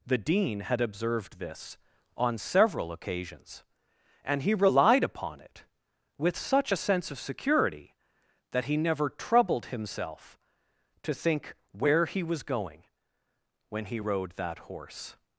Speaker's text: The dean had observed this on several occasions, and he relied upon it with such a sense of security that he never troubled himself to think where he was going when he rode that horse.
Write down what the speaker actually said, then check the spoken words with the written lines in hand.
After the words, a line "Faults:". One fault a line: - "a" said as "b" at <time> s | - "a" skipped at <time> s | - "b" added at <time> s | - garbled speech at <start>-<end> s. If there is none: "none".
The dean had observed this on several occasions, and he relied upon it with such a sense of security that he never troubled himself to think where he was going when he rode that horse.
Faults:
none